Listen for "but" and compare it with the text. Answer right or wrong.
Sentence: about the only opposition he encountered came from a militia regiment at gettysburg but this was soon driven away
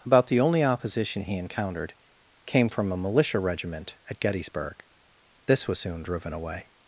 wrong